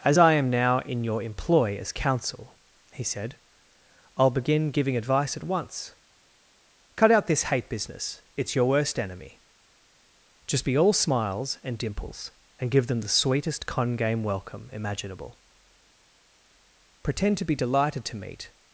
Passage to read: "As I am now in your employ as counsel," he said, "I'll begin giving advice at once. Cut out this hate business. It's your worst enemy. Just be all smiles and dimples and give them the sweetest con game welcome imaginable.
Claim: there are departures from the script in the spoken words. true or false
true